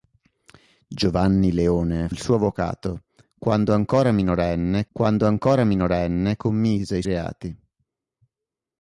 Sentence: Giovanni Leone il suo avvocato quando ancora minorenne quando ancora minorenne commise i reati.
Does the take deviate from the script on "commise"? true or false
false